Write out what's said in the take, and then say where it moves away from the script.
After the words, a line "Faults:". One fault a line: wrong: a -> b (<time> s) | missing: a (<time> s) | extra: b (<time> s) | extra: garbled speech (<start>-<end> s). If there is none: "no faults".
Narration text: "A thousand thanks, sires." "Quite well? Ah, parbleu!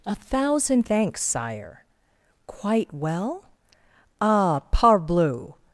"A thousand thanks, sire." "Quite well? Ah, parbleu!
Faults:
wrong: sires -> sire (1.2 s)